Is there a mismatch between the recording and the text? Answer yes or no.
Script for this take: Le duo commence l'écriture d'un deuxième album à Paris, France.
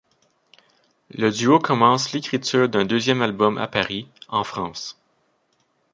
yes